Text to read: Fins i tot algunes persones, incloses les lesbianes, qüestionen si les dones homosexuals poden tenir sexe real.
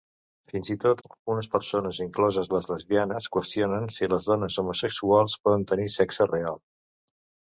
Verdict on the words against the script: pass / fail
pass